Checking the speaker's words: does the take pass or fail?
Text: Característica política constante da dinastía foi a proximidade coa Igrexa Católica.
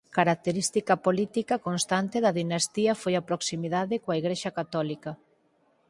pass